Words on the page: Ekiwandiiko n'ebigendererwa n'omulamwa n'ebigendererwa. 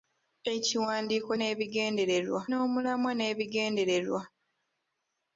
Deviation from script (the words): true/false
false